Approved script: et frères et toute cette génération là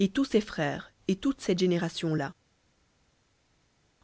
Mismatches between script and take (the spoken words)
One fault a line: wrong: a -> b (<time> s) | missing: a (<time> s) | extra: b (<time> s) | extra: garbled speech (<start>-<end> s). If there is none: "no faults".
extra: tous ses (0.1 s)